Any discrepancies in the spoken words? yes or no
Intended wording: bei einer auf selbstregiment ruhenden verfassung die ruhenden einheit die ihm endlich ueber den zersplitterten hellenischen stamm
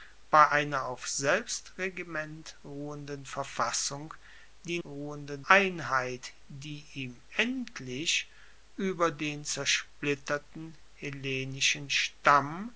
no